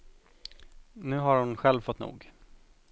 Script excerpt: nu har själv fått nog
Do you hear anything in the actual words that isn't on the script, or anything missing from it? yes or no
yes